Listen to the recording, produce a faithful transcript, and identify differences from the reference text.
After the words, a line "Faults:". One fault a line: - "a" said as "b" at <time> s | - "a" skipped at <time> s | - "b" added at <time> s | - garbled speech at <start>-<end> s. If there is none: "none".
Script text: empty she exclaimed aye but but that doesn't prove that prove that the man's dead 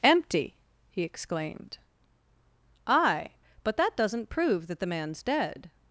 empty he exclaimed aye but that doesn't prove that the man's dead
Faults:
- "she" said as "he" at 0.9 s
- "but" skipped at 3.8 s
- "prove that" skipped at 4.8 s